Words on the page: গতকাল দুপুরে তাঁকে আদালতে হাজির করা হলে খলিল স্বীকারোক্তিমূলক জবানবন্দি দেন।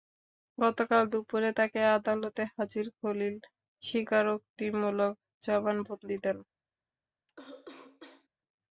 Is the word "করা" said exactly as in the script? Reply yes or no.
no